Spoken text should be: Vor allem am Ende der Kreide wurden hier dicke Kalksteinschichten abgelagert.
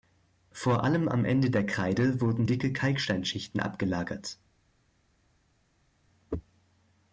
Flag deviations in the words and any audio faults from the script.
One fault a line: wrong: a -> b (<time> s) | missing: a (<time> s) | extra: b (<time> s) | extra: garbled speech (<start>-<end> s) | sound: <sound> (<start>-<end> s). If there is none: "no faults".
missing: hier (2.4 s)